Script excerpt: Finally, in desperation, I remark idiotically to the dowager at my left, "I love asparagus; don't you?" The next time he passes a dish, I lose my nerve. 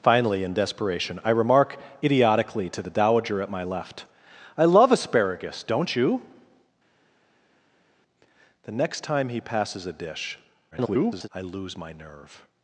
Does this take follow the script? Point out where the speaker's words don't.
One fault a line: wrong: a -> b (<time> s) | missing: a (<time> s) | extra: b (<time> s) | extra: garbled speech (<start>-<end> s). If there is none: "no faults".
extra: garbled speech (10.7-11.3 s)